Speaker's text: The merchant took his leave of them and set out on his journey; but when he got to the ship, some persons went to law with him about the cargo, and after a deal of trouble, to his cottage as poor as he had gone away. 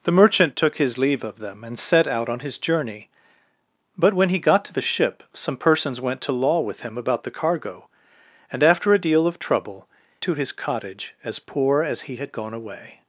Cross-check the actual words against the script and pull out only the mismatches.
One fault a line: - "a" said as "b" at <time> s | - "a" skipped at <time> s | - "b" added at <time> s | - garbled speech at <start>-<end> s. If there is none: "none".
none